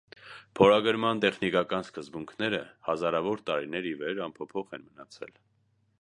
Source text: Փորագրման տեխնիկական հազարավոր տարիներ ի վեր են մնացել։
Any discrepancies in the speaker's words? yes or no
yes